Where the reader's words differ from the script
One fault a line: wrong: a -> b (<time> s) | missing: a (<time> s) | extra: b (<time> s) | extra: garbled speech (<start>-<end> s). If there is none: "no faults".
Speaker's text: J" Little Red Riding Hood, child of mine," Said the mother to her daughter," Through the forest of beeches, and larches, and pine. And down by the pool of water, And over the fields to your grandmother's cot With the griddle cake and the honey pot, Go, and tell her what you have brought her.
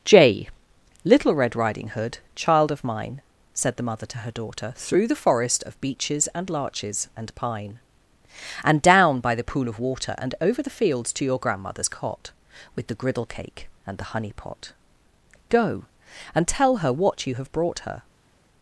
no faults